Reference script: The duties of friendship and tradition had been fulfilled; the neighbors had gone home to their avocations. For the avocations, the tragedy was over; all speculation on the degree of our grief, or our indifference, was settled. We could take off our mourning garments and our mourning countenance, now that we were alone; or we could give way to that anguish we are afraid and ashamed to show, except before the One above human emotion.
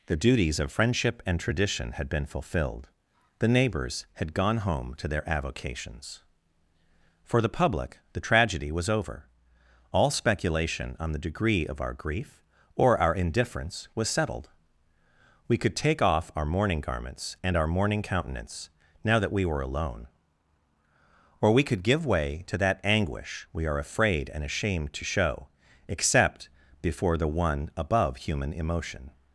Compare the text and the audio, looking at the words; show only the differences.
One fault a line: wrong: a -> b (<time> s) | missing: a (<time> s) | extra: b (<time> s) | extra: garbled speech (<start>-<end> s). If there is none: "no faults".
wrong: avocations -> public (7.5 s)